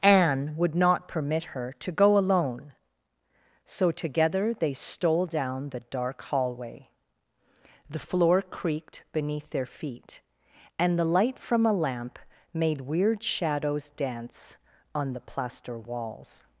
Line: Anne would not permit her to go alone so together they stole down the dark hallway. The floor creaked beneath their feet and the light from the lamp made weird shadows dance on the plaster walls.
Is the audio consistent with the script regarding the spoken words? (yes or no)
no